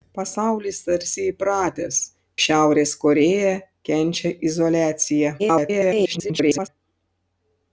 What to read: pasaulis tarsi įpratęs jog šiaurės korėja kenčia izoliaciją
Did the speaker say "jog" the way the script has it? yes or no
no